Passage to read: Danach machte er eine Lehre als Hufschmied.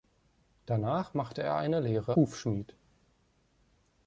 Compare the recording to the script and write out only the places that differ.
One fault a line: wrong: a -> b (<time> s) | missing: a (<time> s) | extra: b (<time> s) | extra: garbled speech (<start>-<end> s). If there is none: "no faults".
missing: als (2.2 s)